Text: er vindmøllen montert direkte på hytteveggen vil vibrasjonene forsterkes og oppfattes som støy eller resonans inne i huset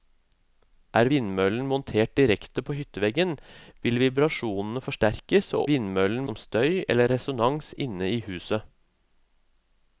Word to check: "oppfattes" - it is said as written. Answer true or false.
false